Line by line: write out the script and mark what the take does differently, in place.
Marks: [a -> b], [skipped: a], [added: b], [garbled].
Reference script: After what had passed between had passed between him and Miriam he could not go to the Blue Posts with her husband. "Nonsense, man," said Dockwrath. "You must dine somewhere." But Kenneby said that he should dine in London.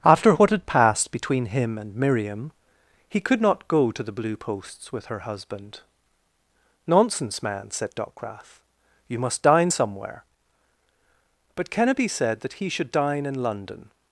After what had passed between [skipped: had passed between] him and Miriam he could not go to the Blue Posts with her husband. "Nonsense, man," said Dockwrath. "You must dine somewhere." But Kenneby said that he should dine in London.